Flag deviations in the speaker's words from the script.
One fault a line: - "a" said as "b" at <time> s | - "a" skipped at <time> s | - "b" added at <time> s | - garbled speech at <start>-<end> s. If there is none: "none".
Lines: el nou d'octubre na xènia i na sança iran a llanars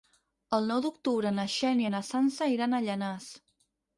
none